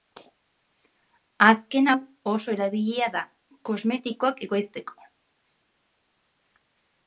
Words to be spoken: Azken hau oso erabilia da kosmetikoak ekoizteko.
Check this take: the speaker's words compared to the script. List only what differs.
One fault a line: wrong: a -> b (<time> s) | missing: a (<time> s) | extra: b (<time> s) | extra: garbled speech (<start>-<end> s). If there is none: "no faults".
no faults